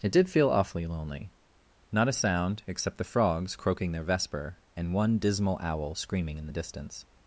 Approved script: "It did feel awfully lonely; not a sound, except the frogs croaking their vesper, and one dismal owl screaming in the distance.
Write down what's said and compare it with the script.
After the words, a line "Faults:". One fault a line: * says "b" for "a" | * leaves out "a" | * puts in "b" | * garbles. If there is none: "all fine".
"It did feel awfully lonely; not a sound, except the frogs croaking their vesper, and one dismal owl screaming in the distance.
Faults:
all fine